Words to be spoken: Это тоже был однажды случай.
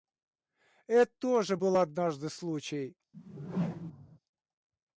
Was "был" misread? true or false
false